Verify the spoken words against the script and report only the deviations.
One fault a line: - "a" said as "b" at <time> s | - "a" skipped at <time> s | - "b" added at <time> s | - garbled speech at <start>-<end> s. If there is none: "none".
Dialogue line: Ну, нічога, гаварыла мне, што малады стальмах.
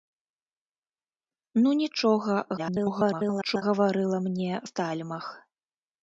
- garbled speech at 2.6-3.6 s
- "што малады" skipped at 4.5 s